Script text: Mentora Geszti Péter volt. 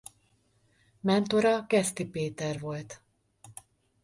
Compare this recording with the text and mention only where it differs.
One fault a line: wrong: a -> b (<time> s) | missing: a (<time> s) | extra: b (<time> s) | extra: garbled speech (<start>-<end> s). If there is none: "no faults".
no faults